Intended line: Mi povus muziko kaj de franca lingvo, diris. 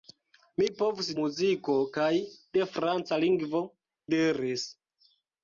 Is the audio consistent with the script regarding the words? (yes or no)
yes